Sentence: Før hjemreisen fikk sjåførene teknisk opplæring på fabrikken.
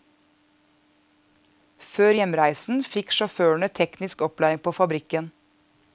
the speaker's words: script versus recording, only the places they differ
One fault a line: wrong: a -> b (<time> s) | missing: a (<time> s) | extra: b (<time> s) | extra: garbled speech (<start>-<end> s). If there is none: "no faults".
no faults